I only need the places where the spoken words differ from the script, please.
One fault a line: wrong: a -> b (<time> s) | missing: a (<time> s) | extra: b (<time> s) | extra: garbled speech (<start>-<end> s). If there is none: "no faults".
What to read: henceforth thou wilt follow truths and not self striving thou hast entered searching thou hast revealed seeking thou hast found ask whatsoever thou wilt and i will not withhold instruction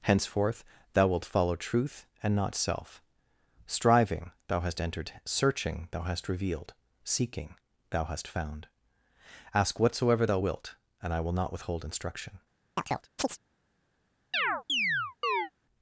wrong: truths -> truth (1.6 s)